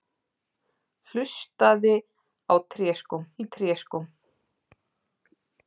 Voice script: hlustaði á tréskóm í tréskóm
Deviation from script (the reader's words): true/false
false